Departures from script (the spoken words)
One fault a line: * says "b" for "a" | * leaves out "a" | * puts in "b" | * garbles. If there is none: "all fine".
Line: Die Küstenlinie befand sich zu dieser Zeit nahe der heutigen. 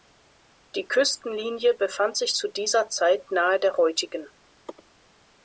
all fine